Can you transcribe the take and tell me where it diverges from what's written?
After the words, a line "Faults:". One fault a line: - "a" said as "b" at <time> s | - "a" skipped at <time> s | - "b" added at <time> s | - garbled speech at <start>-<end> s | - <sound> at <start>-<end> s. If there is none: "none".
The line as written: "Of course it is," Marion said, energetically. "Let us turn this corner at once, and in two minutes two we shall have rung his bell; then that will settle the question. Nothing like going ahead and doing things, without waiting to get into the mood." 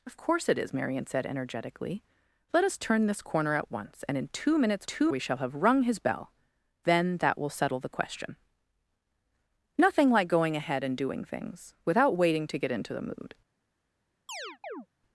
"Of course it is," Marion said, energetically. "Let us turn this corner at once, and in two minutes two we shall have rung his bell; then that will settle the question. Nothing like going ahead and doing things, without waiting to get into the mood."
Faults:
- chirp at 14.3-14.9 s